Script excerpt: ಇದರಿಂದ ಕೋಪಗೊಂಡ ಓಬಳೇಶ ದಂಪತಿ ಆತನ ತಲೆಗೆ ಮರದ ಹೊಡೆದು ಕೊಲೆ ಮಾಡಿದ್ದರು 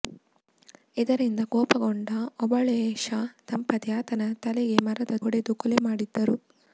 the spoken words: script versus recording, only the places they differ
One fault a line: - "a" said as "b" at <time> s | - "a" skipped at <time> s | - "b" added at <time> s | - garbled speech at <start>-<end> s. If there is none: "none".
none